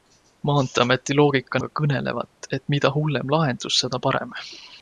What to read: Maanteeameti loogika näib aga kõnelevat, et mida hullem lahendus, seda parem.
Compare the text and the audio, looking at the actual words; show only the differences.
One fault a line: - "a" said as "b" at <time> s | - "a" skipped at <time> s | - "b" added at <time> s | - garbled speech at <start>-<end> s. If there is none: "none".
- "näib" skipped at 1.6 s